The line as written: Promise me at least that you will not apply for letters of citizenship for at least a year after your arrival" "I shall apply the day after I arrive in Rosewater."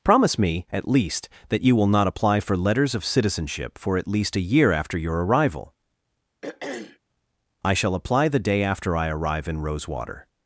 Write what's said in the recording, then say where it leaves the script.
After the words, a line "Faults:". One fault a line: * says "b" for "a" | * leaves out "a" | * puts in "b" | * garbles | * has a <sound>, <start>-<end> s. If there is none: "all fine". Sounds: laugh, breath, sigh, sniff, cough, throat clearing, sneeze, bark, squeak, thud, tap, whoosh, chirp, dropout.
Promise me at least that you will not apply for letters of citizenship for at least a year after your arrival" "I shall apply the day after I arrive in Rosewater."
Faults:
* has a throat clearing, 6.4-7.0 s